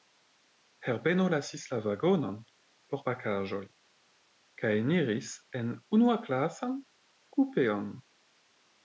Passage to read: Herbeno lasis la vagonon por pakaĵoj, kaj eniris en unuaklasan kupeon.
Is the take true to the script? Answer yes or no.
yes